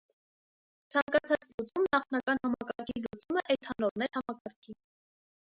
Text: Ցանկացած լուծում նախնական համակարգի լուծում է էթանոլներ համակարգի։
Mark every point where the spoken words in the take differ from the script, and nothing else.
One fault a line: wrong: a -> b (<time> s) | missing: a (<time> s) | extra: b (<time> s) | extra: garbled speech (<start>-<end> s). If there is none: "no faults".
no faults